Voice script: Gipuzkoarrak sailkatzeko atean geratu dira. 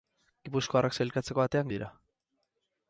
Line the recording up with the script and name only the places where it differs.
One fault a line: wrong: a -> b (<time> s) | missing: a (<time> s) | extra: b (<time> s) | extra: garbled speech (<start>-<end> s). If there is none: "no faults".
missing: geratu (1.7 s)